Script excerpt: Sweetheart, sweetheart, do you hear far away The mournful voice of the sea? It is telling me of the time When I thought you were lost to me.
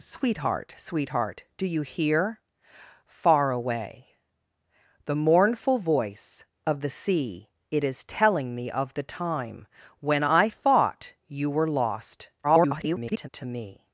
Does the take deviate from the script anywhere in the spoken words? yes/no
yes